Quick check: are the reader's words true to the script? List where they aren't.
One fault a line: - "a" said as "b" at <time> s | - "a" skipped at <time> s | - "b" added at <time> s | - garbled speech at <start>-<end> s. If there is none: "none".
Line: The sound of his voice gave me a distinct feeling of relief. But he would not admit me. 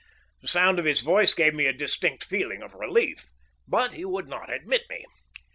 none